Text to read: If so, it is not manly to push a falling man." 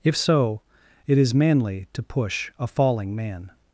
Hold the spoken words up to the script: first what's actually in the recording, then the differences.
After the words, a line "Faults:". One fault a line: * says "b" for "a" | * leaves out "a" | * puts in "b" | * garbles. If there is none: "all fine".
If so, it is manly to push a falling man."
Faults:
* leaves out "not"